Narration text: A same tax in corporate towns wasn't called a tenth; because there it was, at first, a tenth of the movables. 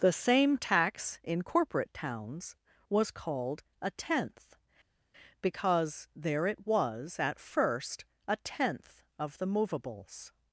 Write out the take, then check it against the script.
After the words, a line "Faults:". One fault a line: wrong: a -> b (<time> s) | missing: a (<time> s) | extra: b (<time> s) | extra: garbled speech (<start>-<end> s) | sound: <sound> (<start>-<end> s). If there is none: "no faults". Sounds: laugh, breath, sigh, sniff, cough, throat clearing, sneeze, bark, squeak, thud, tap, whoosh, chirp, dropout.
The same tax in corporate towns was called a tenth; because there it was, at first, a tenth of the movables.
Faults:
wrong: A -> The (0.0 s)
wrong: wasn't -> was (2.9 s)